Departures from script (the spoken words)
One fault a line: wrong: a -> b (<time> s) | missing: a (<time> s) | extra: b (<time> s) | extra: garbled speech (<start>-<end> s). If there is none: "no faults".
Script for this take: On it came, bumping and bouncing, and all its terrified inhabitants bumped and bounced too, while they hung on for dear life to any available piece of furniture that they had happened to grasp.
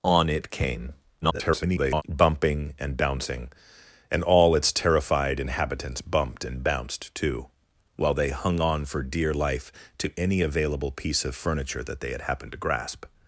extra: garbled speech (1.2-2.0 s)